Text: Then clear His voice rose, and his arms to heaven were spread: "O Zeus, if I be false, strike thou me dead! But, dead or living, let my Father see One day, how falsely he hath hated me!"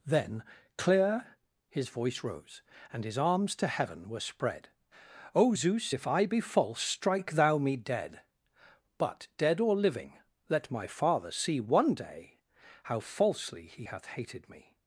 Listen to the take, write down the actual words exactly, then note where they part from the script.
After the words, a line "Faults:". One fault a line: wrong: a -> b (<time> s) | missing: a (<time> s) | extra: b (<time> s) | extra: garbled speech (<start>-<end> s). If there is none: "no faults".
Then clear His voice rose, and his arms to heaven were spread: "O Zeus, if I be false, strike thou me dead! But, dead or living, let my Father see One day, how falsely he hath hated me!"
Faults:
no faults